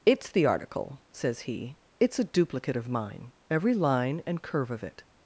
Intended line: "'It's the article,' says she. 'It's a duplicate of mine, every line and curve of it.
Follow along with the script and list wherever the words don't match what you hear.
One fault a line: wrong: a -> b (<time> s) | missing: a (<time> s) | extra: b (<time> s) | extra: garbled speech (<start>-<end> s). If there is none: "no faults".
wrong: she -> he (1.4 s)